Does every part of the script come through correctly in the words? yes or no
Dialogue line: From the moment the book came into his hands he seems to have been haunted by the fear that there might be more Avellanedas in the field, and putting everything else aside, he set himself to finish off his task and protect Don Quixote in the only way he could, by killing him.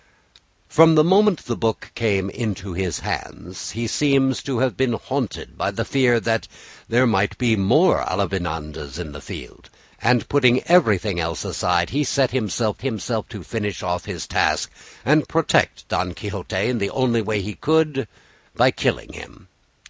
no